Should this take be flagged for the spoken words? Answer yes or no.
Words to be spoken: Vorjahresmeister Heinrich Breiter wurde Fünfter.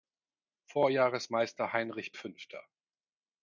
yes